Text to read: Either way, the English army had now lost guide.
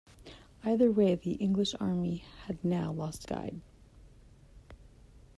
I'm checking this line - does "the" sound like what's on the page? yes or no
yes